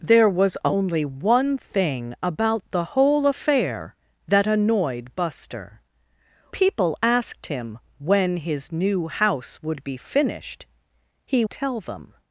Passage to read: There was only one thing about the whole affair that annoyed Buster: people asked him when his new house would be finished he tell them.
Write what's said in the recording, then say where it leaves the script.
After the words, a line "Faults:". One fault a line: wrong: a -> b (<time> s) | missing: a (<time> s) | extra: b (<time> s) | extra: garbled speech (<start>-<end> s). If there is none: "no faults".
There was only one thing about the whole affair that annoyed Buster: people asked him when his new house would be finished he tell them.
Faults:
no faults